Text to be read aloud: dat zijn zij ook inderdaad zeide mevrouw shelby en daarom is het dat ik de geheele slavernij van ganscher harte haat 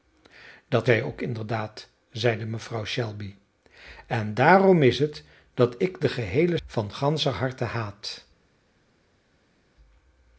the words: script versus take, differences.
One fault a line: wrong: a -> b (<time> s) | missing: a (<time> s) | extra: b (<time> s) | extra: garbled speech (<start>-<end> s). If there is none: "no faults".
missing: zijn (0.9 s)
missing: slavernij (6.6 s)